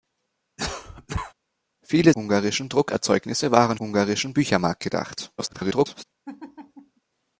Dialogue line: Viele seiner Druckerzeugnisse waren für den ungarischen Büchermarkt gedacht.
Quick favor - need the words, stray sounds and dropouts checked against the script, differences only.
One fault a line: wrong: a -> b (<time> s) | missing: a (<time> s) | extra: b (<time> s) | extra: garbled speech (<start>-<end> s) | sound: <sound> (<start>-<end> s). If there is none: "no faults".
sound: cough (0.6-1.3 s)
wrong: seiner -> ungarischen (2.1 s)
missing: für den (3.8 s)
extra: garbled speech (5.4-6.0 s)
sound: laugh (6.3-7.0 s)